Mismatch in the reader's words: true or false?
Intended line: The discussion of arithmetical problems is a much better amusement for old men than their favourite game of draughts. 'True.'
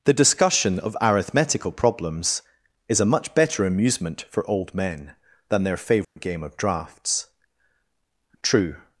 false